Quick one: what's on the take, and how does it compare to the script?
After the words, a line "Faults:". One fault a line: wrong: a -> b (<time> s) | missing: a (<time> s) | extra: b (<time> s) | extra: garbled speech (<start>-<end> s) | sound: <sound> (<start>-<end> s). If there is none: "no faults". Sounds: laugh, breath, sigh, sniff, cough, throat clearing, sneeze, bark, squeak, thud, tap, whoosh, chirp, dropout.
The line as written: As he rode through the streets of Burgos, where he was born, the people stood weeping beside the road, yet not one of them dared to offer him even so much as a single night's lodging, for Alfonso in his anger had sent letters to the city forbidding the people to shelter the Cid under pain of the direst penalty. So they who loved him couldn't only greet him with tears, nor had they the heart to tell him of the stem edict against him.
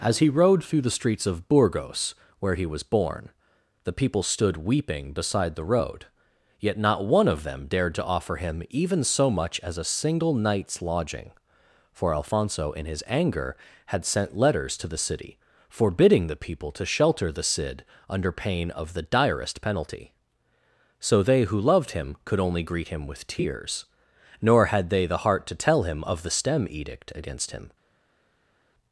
As he rode through the streets of Burgos, where he was born, the people stood weeping beside the road, yet not one of them dared to offer him even so much as a single night's lodging, for Alfonso in his anger had sent letters to the city forbidding the people to shelter the Cid under pain of the direst penalty. So they who loved him could only greet him with tears, nor had they the heart to tell him of the stem edict against him.
Faults:
wrong: couldn't -> could (22.2 s)